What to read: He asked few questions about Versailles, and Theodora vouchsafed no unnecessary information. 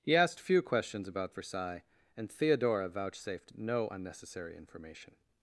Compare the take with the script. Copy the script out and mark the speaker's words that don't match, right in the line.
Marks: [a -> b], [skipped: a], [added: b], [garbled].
He asked few questions about Versailles, and Theodora vouchsafed no unnecessary information.